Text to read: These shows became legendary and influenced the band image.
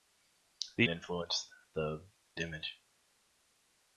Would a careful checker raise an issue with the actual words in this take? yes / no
yes